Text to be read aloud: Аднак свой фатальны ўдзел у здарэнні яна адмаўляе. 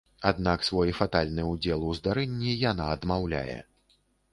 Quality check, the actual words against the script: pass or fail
pass